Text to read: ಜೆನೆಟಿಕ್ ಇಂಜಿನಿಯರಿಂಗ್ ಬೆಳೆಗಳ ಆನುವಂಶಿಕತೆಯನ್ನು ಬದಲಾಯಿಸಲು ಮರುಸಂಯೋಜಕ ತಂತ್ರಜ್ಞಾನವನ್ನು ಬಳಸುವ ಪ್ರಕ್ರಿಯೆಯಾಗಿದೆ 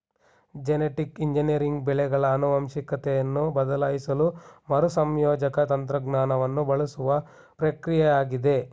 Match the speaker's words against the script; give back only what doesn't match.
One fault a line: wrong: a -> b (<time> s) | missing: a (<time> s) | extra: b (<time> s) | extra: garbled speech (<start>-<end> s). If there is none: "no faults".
no faults